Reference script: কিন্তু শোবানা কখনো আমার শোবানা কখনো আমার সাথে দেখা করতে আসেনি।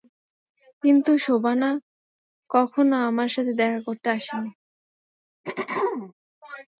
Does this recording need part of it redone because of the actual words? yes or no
yes